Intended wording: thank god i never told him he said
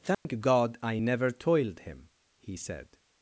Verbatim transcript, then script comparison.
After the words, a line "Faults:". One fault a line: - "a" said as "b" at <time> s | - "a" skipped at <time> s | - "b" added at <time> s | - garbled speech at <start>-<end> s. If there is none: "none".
thank god i never toiled him he said
Faults:
- "told" said as "toiled" at 1.3 s